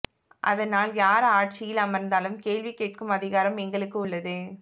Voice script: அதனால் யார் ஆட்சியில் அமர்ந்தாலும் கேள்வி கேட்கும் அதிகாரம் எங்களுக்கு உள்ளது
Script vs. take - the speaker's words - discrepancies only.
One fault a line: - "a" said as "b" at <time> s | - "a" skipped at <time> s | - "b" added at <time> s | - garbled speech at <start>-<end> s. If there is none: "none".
none